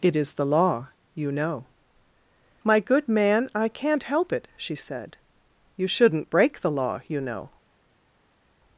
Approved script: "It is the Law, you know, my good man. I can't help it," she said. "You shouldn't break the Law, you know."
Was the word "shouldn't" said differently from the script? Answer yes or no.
no